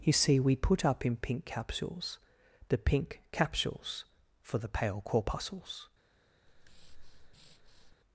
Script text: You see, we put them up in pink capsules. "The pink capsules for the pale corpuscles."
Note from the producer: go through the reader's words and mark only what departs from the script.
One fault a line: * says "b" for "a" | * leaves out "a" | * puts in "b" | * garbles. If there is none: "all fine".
* leaves out "them"